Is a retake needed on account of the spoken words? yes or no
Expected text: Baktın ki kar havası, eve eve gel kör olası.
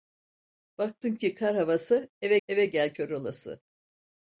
no